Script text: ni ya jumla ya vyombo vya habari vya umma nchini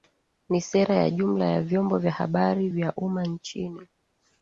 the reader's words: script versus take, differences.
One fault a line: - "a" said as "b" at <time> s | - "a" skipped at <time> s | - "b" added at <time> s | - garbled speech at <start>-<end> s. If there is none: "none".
- "sera" added at 0.6 s